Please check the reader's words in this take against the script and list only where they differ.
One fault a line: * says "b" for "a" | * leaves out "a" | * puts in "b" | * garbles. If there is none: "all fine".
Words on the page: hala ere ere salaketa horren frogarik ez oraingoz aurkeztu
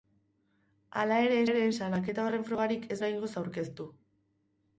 all fine